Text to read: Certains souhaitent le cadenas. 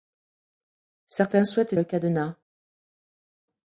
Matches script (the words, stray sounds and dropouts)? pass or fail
pass